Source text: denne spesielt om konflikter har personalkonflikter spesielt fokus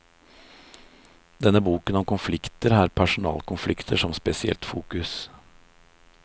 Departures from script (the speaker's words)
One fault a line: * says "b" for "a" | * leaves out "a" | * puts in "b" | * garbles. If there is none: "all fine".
* says "boken" for "spesielt"
* puts in "som"